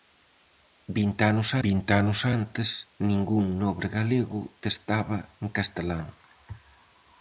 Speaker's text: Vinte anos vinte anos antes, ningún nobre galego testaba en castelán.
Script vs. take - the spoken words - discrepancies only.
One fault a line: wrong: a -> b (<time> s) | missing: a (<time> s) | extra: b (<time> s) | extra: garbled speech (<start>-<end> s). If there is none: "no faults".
no faults